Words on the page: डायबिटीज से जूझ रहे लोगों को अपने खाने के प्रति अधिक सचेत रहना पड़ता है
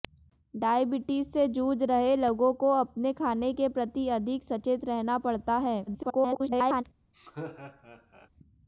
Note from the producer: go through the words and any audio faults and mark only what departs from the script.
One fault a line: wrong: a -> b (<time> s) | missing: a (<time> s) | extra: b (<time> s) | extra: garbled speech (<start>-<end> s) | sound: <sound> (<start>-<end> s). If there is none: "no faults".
extra: garbled speech (5.9-6.8 s)
sound: laugh (7.1-8.3 s)